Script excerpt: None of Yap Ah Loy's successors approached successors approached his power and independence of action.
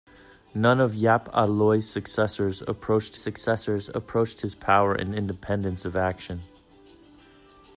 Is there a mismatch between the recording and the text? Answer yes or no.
no